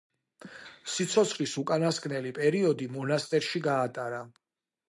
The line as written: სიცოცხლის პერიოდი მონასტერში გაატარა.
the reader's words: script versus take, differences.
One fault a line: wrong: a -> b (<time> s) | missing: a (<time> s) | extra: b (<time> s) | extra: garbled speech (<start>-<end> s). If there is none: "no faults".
extra: უკანასკნელი (1.6 s)